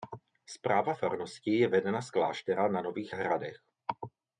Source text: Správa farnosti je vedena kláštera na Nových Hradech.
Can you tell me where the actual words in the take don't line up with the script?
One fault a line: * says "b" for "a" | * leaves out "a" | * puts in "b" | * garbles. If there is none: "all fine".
* puts in "z"